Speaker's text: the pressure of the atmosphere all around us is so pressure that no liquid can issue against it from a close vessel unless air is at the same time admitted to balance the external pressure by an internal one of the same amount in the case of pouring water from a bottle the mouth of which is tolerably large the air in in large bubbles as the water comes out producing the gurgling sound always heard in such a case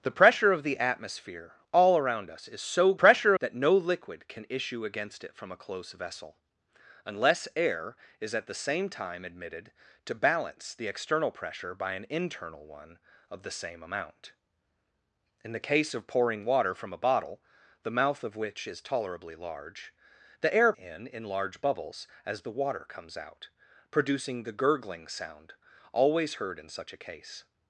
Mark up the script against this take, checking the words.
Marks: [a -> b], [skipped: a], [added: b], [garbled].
the pressure of the atmosphere all around us is so pressure that no liquid can issue against it from a close vessel unless air is at the same time admitted to balance the external pressure by an internal one of the same amount in the case of pouring water from a bottle the mouth of which is tolerably large the air in in large bubbles as the water comes out producing the gurgling sound always heard in such a case